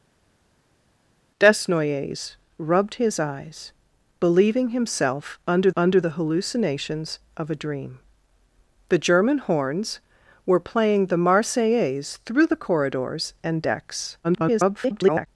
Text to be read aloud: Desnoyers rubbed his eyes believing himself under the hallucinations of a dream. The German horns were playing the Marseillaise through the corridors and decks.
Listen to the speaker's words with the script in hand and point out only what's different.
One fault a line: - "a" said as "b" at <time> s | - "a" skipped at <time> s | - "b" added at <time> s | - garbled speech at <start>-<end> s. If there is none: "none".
- "under" added at 5.7 s
- garbled speech at 14.2-15.3 s